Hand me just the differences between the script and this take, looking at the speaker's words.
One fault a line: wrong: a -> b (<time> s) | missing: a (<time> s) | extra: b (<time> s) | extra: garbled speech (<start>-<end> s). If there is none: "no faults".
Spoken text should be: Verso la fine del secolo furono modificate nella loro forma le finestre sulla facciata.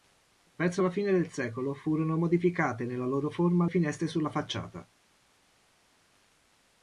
missing: le (3.7 s)